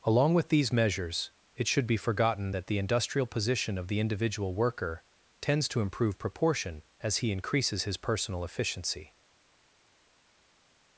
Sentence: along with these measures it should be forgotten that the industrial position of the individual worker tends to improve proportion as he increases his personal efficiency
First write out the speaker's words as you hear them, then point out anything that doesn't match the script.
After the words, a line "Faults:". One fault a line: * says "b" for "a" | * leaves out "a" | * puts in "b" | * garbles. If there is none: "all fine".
along with these measures it should be forgotten that the industrial position of the individual worker tends to improve proportion as he increases his personal efficiency
Faults:
all fine